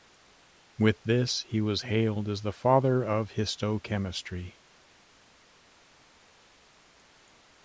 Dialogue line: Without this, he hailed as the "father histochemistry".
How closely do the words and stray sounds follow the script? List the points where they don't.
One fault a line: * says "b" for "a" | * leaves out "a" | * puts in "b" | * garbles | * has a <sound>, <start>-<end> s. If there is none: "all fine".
* says "With" for "Without"
* puts in "was"
* puts in "of"